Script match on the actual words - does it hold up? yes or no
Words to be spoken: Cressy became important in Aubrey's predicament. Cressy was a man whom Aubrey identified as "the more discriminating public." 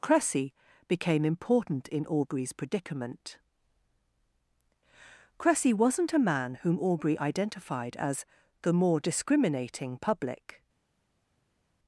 no